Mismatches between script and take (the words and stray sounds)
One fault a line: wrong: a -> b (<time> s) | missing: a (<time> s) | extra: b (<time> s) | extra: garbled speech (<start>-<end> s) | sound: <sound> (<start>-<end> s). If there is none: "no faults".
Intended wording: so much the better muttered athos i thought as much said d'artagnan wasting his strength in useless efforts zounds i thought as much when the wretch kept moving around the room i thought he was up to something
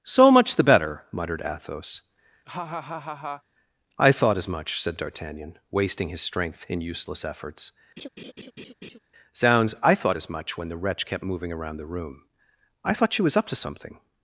sound: laugh (2.5-3.4 s)
sound: laugh (8.0-9.0 s)
wrong: he -> she (13.1 s)